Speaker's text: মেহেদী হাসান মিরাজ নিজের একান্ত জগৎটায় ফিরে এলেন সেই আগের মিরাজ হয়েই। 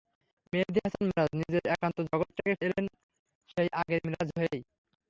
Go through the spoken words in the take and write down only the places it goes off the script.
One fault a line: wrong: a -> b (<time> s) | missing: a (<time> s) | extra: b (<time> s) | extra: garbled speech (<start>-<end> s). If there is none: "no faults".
missing: ফিরে (2.5 s)